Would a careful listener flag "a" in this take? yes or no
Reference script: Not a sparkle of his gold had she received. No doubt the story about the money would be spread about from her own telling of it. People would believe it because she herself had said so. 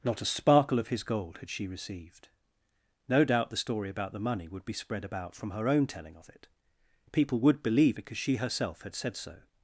no